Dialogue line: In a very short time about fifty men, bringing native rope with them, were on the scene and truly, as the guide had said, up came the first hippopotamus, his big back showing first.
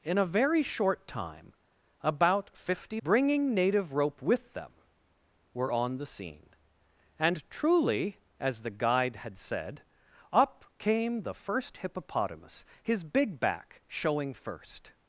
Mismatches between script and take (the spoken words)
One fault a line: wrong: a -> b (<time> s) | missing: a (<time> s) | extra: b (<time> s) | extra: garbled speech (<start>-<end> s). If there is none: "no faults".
missing: men (3.0 s)